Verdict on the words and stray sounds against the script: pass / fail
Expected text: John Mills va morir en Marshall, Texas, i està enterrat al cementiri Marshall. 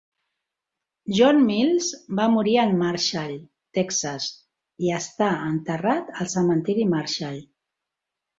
pass